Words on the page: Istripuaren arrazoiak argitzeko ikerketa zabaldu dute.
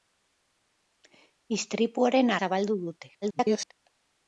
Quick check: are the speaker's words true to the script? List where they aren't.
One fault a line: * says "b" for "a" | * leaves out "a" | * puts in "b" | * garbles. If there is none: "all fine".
* leaves out "arrazoiak argitzeko ikerketa"
* garbles